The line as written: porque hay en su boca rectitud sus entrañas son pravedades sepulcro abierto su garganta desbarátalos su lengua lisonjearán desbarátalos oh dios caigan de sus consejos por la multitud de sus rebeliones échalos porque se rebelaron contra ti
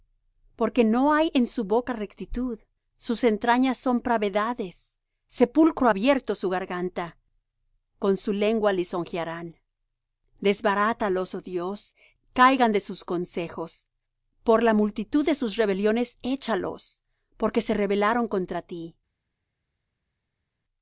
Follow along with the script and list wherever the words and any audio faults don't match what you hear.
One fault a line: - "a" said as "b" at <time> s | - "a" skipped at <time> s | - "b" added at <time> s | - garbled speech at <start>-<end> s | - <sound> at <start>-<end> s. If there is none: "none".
- "no" added at 0.8 s
- "desbarátalos" said as "con" at 8.0 s